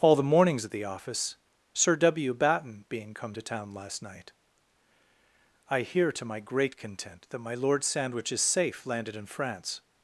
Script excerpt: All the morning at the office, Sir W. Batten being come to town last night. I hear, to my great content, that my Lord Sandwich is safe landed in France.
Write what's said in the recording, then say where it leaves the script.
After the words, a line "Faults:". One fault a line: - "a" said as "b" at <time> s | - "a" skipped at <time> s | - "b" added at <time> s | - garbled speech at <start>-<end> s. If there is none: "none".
All the mornings at the office, Sir W. Batten being come to town last night. I hear, to my great content, that my Lord Sandwich is safe landed in France.
Faults:
- "morning" said as "mornings" at 0.2 s